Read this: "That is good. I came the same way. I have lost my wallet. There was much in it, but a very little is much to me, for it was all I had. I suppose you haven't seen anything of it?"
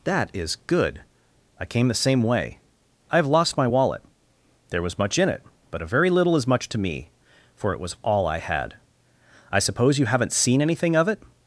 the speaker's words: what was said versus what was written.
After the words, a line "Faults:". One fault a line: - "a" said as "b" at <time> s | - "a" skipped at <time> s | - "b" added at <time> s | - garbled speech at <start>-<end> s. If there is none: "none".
"That is good. I came the same way. I have lost my wallet. There was much in it, but a very little is much to me, for it was all I had. I suppose you haven't seen anything of it?"
Faults:
none